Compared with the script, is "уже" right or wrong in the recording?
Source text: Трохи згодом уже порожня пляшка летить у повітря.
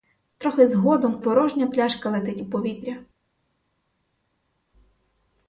wrong